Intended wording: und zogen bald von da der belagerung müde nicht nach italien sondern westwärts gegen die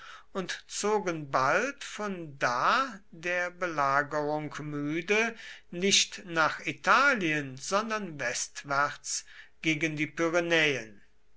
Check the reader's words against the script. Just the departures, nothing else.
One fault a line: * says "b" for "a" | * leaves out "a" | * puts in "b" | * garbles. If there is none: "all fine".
all fine